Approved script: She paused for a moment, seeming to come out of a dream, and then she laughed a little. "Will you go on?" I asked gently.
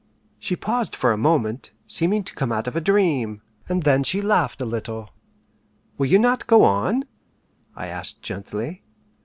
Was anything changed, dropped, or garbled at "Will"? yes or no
no